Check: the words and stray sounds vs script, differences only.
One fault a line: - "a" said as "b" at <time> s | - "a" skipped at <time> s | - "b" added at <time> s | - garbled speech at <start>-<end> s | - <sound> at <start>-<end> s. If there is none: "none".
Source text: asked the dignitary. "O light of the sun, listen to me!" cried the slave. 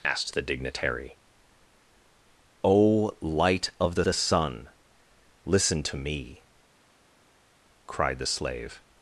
- "the" added at 4.0 s